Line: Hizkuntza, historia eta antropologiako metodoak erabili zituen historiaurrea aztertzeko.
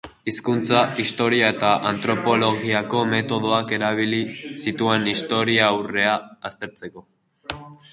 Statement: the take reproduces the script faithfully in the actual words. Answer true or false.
true